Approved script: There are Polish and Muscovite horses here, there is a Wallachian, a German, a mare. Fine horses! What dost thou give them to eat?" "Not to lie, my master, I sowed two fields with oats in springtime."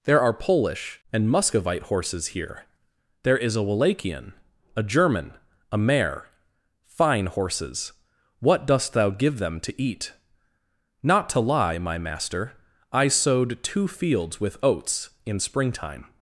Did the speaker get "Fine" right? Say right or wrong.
right